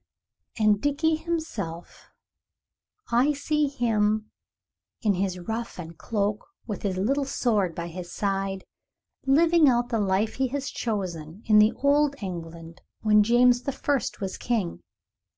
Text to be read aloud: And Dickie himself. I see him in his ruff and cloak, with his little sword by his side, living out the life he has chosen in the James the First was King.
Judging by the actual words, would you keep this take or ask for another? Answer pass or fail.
fail